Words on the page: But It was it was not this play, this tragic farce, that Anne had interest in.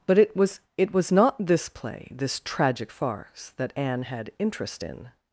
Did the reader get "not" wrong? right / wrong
right